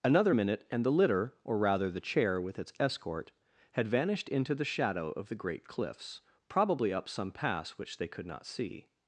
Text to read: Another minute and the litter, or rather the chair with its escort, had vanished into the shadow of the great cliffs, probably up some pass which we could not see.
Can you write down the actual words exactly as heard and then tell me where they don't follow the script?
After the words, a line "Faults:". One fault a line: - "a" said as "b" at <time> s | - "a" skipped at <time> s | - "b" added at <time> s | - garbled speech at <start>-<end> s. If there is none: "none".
Another minute and the litter, or rather the chair with its escort, had vanished into the shadow of the great cliffs, probably up some pass which they could not see.
Faults:
- "we" said as "they" at 8.0 s